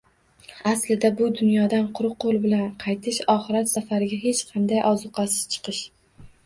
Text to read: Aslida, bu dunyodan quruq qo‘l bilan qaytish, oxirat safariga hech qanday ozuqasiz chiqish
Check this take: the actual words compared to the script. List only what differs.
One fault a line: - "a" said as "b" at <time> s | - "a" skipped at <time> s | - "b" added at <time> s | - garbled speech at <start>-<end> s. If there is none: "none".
none